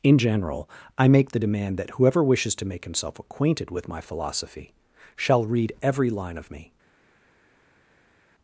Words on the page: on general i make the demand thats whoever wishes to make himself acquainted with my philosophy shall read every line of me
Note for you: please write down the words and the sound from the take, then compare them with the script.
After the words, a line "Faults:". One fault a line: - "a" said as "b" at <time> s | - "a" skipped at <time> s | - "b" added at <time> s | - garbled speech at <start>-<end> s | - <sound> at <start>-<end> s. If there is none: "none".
in general i make the demand that whoever wishes to make himself acquainted with my philosophy shall read every line of me
Faults:
- "on" said as "in" at 0.0 s
- "thats" said as "that" at 1.8 s